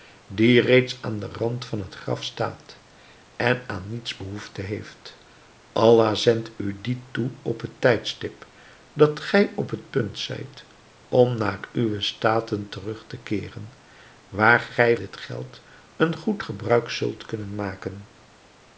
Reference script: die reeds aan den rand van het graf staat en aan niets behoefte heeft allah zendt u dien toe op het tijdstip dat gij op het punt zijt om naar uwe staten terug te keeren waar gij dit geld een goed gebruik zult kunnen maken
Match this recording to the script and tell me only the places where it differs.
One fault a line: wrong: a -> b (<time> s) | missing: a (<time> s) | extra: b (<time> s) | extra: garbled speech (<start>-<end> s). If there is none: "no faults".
no faults